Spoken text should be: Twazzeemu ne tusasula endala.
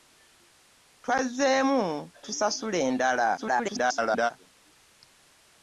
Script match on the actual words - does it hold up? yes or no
no